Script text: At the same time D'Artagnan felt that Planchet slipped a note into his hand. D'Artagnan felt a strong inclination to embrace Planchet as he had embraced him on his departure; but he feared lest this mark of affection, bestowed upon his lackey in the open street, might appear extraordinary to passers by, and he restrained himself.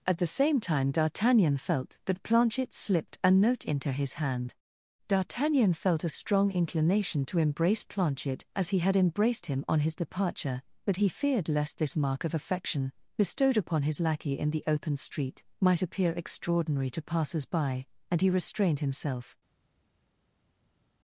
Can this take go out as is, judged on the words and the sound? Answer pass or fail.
pass